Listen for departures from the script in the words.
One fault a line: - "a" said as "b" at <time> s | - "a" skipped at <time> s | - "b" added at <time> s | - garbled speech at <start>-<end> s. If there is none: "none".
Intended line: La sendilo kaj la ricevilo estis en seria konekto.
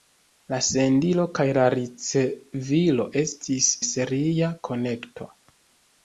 - "en" skipped at 3.7 s